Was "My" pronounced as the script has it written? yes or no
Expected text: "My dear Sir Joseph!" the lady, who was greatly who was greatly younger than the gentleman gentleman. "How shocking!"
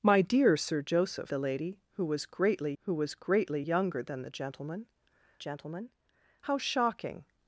yes